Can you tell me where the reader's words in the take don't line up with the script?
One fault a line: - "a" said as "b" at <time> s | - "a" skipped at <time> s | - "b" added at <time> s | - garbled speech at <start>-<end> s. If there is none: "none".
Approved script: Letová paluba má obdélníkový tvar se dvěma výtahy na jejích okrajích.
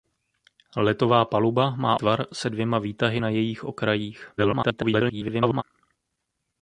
- "obdélníkový" skipped at 2.0 s
- garbled speech at 4.4-5.6 s